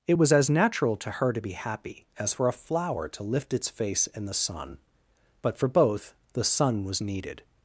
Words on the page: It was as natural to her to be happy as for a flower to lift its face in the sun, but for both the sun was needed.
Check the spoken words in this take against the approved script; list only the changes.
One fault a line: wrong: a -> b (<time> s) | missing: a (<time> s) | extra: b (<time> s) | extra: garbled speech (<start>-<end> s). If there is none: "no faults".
no faults